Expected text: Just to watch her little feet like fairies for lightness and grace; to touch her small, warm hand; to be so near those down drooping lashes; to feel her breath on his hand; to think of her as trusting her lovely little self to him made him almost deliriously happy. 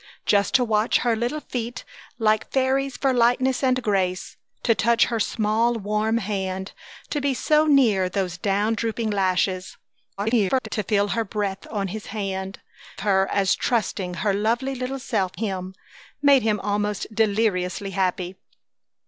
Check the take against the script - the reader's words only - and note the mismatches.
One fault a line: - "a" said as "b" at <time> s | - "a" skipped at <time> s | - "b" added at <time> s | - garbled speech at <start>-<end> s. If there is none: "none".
- garbled speech at 10.2-10.7 s
- "to think of" skipped at 12.6 s
- "to" skipped at 15.4 s